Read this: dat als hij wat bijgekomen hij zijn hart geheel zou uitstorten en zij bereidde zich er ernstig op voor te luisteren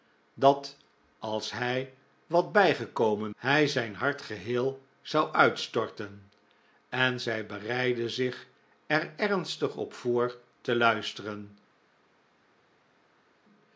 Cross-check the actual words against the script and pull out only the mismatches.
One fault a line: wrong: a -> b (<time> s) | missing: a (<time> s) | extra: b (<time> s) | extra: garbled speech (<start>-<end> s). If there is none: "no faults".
no faults